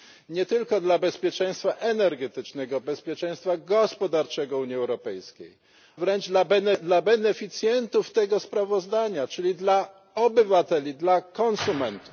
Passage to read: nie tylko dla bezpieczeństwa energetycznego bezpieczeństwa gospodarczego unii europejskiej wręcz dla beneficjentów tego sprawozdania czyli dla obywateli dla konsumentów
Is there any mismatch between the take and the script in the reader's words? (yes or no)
no